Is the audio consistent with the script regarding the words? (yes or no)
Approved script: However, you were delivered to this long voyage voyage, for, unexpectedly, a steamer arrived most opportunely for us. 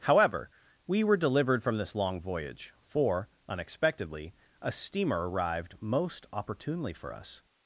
no